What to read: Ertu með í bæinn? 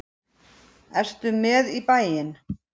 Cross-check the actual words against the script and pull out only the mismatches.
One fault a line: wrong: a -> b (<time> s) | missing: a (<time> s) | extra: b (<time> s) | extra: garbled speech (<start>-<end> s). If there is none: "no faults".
no faults